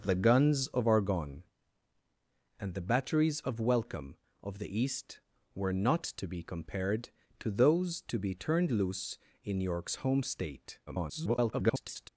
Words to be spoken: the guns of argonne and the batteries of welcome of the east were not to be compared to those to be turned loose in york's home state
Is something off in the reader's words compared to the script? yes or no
yes